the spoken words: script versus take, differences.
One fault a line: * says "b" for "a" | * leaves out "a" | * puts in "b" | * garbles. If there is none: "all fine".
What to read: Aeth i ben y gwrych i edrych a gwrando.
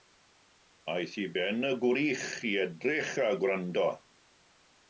all fine